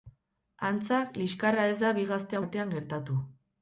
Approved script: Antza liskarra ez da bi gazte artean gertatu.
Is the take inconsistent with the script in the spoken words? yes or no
no